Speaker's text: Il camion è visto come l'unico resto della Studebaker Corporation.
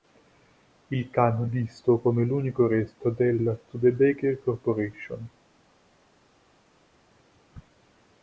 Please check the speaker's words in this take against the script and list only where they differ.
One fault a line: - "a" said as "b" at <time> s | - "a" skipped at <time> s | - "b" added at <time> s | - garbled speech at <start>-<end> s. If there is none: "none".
- "è" skipped at 1.5 s